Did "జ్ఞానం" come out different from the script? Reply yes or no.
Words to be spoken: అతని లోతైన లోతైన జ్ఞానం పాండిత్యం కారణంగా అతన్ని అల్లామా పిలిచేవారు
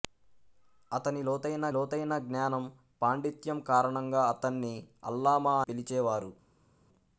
no